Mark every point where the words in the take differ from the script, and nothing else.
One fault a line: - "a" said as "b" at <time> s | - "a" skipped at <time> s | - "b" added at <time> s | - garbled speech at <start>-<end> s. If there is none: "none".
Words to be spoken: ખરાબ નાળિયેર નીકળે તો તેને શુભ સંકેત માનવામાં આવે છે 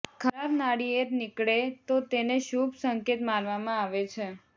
none